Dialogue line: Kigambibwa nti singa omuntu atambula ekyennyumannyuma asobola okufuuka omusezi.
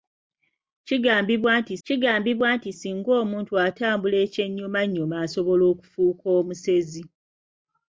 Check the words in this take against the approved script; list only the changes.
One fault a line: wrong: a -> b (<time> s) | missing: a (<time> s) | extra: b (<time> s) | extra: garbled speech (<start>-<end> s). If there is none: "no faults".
extra: kigambibwa nti (1.8 s)